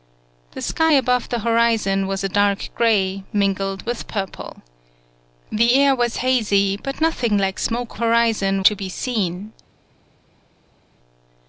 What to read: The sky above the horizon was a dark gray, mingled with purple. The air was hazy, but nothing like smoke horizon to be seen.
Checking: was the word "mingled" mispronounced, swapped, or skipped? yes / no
no